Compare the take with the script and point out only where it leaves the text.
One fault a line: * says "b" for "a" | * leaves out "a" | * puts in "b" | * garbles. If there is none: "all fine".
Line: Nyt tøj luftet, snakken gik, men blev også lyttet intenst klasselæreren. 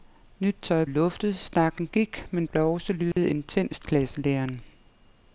all fine